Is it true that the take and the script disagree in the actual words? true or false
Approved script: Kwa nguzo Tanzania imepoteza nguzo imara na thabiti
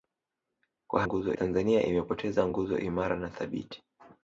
false